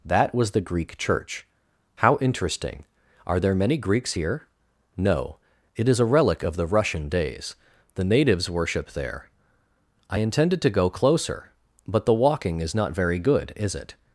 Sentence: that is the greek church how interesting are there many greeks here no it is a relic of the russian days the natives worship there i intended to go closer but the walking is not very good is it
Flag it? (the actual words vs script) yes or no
yes